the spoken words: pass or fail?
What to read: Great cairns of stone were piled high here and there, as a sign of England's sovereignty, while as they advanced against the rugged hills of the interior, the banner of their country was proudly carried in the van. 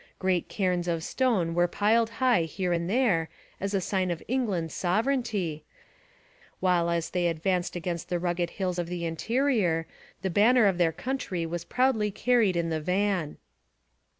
pass